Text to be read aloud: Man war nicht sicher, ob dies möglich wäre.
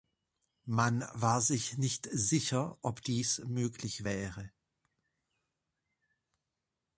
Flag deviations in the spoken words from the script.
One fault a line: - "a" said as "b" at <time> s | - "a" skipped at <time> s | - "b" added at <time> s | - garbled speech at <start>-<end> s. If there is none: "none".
- "sich" added at 1.4 s